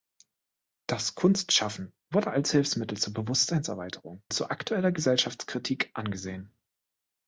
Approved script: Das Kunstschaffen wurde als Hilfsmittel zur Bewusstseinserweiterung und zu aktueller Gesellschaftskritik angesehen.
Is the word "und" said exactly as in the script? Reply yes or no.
no